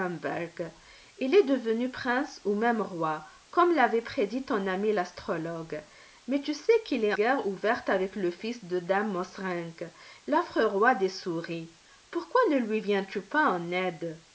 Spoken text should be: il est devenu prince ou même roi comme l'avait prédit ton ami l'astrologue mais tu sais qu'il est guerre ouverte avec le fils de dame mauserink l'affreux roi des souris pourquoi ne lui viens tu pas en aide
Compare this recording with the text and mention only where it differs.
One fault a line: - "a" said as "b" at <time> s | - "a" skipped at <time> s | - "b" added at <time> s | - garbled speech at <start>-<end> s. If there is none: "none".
none